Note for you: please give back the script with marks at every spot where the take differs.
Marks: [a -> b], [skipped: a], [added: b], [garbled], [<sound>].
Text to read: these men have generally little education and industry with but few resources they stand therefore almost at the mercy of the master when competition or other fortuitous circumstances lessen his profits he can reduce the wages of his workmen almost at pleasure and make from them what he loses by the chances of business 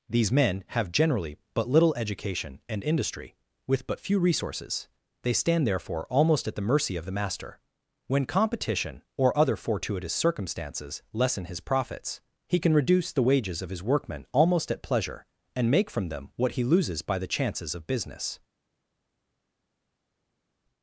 these men have generally [added: but] little education and industry with but few resources they stand therefore almost at the mercy of the master when competition or other fortuitous circumstances lessen his profits he can reduce the wages of his workmen almost at pleasure and make from them what he loses by the chances of business